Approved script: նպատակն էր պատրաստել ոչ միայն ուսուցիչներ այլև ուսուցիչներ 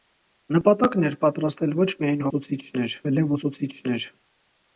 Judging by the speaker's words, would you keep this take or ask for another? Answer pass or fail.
pass